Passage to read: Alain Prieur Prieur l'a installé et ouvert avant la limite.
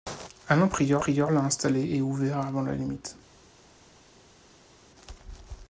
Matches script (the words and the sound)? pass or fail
pass